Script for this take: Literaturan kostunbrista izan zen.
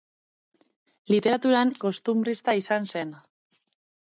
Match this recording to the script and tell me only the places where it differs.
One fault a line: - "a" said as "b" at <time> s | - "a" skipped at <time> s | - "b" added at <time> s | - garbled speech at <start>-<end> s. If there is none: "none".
none